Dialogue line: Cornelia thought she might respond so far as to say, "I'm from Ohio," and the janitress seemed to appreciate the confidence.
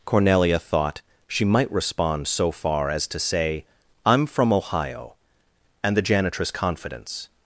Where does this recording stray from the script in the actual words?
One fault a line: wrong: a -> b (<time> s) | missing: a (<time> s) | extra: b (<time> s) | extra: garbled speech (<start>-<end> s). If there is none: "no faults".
missing: seemed to appreciate the (6.5 s)